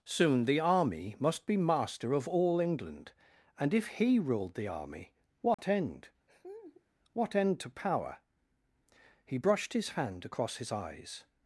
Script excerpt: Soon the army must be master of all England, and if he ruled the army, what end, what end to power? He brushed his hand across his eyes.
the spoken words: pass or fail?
pass